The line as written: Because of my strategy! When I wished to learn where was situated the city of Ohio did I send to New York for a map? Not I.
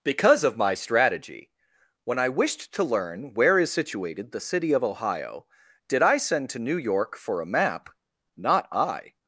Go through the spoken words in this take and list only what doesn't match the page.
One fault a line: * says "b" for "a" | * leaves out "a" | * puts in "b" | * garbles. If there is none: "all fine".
* says "is" for "was"